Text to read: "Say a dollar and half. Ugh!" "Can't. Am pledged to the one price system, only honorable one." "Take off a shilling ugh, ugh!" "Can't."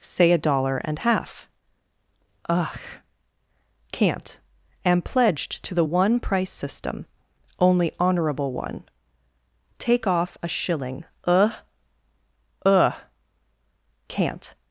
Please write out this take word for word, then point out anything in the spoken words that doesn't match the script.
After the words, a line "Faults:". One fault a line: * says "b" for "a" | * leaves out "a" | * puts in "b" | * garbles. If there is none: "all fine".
"Say a dollar and half. Ugh!" "Can't. Am pledged to the one price system, only honorable one." "Take off a shilling ugh, ugh!" "Can't."
Faults:
all fine